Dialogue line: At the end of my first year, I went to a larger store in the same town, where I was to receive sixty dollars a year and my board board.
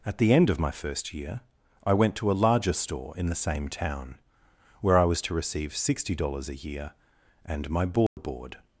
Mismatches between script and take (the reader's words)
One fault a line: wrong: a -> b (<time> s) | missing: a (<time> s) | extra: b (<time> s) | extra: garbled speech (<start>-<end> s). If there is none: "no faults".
no faults